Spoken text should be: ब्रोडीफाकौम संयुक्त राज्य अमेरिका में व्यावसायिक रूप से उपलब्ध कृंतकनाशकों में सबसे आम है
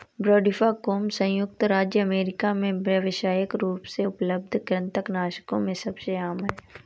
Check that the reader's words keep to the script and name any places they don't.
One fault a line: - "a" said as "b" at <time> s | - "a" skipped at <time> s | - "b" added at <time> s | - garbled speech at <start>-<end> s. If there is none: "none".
none